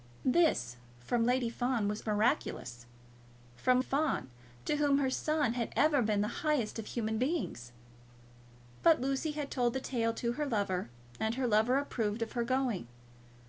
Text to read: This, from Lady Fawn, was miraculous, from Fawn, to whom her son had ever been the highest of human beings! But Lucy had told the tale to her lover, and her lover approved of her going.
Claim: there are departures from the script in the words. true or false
false